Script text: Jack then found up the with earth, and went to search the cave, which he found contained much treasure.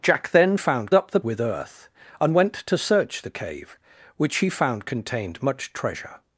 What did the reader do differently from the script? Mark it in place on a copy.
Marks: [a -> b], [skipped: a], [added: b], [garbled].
Jack then found up the with earth, and went to search the cave, which he found contained much treasure.